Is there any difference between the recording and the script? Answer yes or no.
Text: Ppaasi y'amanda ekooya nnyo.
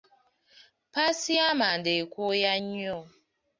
no